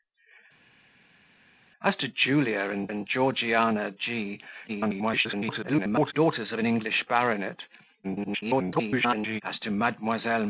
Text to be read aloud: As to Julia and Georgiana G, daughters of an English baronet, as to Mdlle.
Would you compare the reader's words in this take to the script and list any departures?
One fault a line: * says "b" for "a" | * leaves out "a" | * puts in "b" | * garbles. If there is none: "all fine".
* puts in "and"
* garbles
* garbles